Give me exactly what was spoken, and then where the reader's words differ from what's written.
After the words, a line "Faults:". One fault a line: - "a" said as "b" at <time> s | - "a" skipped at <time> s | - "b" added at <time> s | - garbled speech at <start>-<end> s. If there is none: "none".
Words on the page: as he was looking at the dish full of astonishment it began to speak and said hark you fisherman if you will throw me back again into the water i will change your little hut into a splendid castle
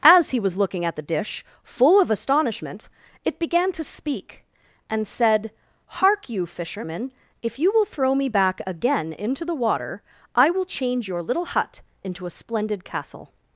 as he was looking at the dish full of astonishment it began to speak and said hark you fisherman if you will throw me back again into the water i will change your little hut into a splendid castle
Faults:
none